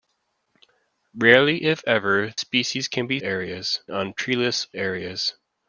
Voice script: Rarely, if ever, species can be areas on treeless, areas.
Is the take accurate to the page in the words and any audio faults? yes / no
yes